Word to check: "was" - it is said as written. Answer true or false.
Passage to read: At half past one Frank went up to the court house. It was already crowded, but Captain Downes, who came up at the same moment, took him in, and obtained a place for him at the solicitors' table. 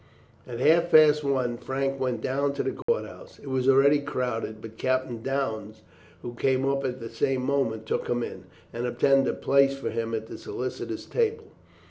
true